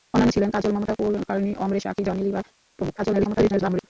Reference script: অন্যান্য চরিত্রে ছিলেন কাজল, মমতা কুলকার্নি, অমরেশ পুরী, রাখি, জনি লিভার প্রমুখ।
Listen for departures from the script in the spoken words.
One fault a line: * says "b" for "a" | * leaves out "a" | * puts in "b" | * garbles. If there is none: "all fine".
* leaves out "চরিত্রে"
* leaves out "পুরী"
* garbles